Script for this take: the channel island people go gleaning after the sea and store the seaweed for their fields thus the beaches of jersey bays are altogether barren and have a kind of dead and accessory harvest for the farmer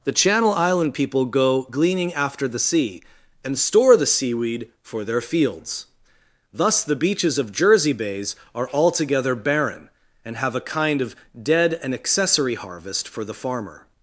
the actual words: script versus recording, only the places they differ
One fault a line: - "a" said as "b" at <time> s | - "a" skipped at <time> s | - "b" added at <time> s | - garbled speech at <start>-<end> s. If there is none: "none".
none